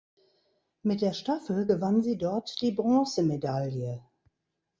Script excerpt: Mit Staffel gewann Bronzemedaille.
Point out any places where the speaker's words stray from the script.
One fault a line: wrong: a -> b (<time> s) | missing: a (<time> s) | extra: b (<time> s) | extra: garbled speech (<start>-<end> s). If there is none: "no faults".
extra: der (1.0 s)
extra: sie dort die (2.0 s)